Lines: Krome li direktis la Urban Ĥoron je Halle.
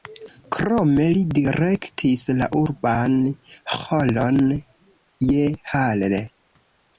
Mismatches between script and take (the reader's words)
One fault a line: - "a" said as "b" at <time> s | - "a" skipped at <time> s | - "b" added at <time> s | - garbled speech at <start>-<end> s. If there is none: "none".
none